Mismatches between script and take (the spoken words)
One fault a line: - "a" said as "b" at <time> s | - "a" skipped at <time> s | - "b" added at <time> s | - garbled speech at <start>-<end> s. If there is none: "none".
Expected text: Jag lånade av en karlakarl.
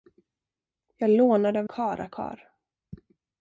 - "en" skipped at 1.7 s